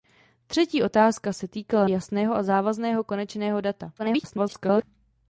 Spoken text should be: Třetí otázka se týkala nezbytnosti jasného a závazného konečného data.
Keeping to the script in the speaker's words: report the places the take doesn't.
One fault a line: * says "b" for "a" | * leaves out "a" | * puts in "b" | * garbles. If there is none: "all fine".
* leaves out "nezbytnosti"
* garbles